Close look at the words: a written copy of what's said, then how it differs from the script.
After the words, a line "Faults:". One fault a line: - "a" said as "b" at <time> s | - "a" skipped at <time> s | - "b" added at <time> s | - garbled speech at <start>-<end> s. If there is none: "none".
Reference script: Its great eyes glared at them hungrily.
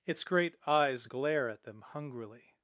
Its great eyes glare at them hungrily.
Faults:
- "glared" said as "glare" at 1.0 s